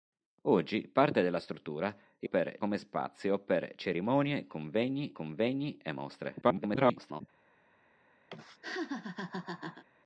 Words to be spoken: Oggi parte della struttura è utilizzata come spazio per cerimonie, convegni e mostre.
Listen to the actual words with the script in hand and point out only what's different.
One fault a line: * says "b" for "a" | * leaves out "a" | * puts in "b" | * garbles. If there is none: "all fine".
* says "per" for "utilizzata"
* puts in "convegni"
* garbles